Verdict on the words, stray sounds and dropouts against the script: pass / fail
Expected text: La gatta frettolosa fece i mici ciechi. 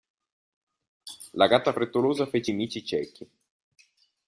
pass